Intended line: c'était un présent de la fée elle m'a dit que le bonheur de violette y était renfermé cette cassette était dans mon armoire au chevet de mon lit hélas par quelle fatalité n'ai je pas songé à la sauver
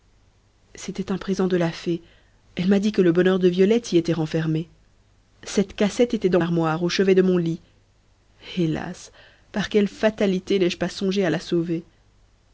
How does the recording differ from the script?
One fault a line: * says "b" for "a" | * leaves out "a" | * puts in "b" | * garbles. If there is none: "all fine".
* leaves out "mon"